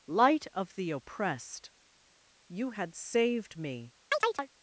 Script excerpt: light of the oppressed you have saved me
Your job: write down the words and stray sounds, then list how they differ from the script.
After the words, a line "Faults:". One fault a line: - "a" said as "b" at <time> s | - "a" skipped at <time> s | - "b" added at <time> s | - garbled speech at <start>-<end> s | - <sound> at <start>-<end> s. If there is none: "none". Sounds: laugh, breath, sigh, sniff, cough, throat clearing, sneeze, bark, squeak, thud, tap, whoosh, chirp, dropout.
light of the oppressed you had saved me
Faults:
- "have" said as "had" at 2.7 s
- chirp at 4.1-4.5 s